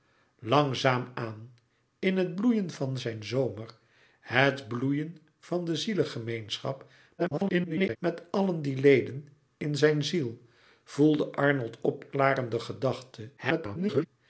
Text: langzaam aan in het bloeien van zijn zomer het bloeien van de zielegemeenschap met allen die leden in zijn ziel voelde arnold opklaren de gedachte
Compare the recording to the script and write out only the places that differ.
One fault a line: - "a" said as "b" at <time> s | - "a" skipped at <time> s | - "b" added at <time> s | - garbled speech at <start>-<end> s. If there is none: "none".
- garbled speech at 7.2-8.0 s
- garbled speech at 13.4-14.1 s